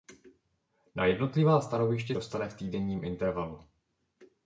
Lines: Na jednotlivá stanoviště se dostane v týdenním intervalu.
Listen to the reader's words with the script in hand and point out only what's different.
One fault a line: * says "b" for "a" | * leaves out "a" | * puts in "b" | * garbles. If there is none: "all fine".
* leaves out "se"